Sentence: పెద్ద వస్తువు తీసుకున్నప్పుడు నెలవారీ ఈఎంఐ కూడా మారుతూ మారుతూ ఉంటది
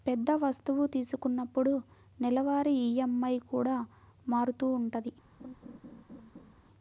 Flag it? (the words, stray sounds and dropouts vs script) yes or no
yes